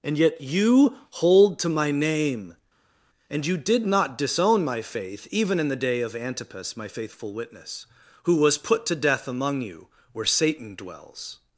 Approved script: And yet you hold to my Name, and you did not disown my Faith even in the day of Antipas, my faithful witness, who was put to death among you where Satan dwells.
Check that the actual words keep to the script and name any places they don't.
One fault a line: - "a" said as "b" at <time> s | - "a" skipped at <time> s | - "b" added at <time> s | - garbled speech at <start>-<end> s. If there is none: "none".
none